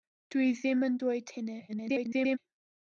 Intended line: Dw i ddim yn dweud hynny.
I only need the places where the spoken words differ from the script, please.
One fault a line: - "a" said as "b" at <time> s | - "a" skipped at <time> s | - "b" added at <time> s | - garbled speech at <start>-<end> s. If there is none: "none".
- garbled speech at 1.7-2.4 s